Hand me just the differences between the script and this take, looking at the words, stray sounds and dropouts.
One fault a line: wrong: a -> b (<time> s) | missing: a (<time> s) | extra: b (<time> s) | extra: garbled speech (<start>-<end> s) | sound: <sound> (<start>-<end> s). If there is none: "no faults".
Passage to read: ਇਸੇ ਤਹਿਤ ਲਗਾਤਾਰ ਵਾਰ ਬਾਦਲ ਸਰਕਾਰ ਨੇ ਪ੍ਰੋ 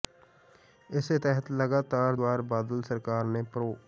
no faults